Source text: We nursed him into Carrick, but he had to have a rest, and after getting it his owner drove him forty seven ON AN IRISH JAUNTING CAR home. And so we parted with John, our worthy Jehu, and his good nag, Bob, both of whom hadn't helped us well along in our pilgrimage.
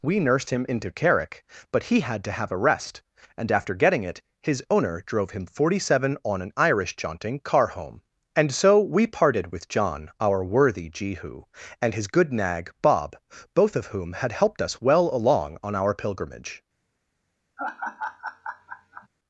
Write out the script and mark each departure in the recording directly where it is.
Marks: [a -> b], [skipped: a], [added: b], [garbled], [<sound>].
We nursed him into Carrick, but he had to have a rest, and after getting it his owner drove him forty seven ON AN IRISH JAUNTING CAR home. And so we parted with John, our worthy Jehu, and his good nag, Bob, both of whom [hadn't -> had] helped us well along [in -> on] our pilgrimage. [laugh]